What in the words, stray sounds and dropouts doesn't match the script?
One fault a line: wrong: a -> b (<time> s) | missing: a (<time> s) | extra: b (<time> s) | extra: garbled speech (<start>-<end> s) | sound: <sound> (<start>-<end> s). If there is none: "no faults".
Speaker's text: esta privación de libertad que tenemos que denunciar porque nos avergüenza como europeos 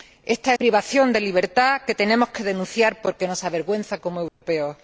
sound: dropout (4.3-4.4 s)